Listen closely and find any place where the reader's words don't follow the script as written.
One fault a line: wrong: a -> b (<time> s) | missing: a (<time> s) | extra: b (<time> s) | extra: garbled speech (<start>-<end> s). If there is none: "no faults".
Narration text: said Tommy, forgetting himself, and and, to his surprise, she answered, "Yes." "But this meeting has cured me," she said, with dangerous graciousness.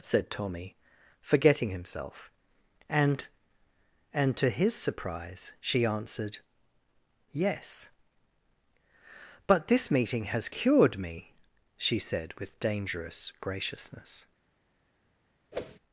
no faults